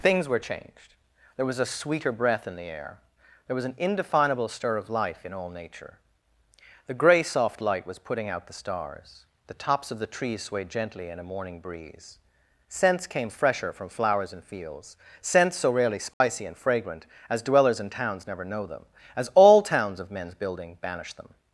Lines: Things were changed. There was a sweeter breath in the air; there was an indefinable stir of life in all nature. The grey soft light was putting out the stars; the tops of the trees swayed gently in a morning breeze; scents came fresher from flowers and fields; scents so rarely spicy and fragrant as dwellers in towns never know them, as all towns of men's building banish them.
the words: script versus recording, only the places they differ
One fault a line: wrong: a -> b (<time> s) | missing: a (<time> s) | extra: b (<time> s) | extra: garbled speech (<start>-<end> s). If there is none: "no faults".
no faults